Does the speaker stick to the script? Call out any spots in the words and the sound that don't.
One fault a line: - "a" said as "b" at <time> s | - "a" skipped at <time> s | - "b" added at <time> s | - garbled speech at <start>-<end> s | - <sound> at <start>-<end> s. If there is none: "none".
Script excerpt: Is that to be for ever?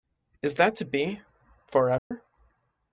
- dropout at 2.0-2.1 s